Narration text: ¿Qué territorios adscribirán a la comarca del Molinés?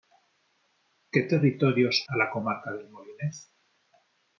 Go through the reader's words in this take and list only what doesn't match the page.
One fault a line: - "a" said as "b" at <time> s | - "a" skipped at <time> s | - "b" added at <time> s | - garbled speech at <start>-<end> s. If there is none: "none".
- "adscribirán" skipped at 2.0 s